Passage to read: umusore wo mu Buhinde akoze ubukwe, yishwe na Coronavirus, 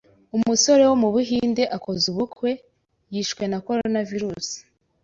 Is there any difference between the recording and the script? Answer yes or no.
no